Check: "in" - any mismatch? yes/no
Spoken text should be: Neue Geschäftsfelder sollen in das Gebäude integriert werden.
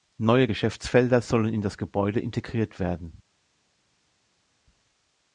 no